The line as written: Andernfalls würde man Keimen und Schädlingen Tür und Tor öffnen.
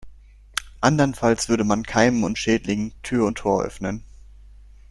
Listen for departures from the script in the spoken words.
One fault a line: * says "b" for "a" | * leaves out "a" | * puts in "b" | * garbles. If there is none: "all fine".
all fine